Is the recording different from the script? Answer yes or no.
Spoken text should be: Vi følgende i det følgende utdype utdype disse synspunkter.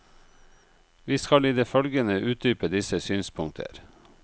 yes